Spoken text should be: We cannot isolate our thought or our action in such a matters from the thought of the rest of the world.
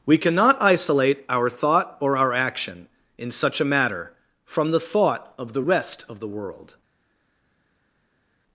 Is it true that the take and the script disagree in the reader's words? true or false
true